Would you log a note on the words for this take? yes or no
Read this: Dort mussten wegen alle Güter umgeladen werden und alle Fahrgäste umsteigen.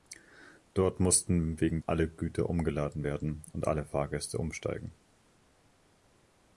no